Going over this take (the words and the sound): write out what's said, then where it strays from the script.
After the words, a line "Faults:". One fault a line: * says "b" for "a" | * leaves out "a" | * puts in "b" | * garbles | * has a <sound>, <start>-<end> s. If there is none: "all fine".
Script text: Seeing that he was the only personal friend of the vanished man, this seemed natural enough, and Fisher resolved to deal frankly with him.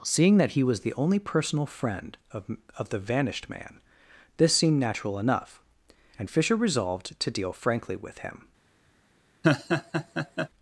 Seeing that he was the only personal friend of of the vanished man, this seemed natural enough, and Fisher resolved to deal frankly with him.
Faults:
* puts in "of"
* has a laugh, 9.4-10.5 s